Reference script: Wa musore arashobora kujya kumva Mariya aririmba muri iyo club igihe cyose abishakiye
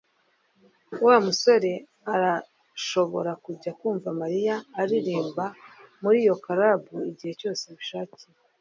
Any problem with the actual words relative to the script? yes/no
no